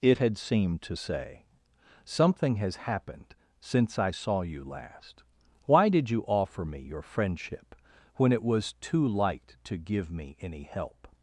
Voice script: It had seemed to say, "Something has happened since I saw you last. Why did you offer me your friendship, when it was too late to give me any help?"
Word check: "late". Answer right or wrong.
wrong